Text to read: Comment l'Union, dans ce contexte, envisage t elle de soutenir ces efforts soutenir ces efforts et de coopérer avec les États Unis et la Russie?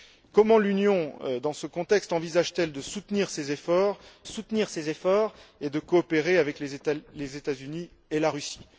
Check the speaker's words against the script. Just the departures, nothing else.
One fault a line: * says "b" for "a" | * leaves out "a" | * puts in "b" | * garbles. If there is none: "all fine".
all fine